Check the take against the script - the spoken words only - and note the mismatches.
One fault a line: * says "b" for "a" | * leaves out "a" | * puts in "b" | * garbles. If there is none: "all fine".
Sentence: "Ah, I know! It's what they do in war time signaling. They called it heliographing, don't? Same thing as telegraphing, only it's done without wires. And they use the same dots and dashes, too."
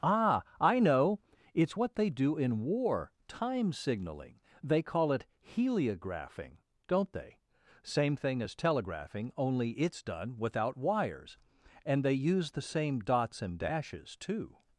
* says "call" for "called"
* puts in "they"